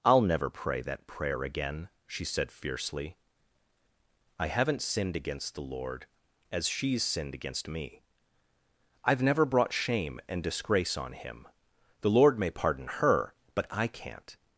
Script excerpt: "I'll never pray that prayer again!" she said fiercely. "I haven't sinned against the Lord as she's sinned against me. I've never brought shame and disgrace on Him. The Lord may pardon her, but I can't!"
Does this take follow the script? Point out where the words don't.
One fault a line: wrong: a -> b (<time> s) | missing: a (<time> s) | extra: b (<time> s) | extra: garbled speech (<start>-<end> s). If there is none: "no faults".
no faults